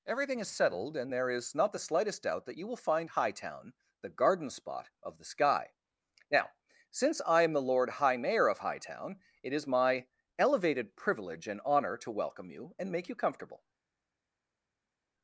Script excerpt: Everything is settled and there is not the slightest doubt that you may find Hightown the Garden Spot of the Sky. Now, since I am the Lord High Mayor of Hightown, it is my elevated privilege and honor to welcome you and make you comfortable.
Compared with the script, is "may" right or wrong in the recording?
wrong